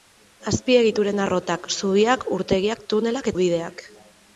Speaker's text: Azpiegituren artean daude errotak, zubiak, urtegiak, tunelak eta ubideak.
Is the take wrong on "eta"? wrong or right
wrong